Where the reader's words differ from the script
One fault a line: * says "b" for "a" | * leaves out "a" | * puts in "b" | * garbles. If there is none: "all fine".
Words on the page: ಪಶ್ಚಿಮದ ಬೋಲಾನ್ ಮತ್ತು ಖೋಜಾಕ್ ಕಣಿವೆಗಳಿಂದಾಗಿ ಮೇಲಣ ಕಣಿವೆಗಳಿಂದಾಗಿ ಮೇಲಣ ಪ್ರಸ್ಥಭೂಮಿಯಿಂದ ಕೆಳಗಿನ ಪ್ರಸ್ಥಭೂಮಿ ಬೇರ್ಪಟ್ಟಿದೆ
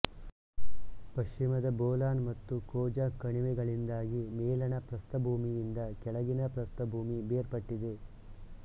* leaves out "ಕಣಿವೆಗಳಿಂದಾಗಿ ಮೇಲಣ"